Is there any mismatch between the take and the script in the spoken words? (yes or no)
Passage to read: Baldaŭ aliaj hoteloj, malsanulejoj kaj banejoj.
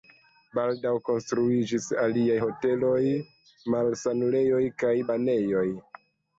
yes